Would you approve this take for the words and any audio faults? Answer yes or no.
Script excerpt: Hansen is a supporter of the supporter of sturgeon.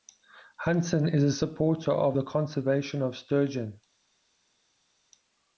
no